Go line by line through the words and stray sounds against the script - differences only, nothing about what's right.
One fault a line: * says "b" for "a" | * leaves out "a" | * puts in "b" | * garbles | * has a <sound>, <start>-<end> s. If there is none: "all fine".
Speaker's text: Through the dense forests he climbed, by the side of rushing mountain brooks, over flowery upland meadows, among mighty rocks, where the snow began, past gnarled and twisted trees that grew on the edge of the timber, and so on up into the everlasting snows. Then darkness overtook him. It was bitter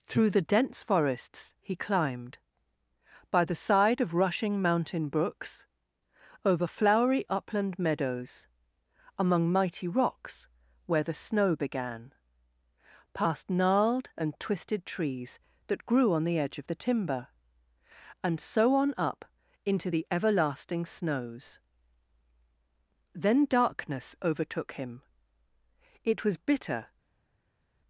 all fine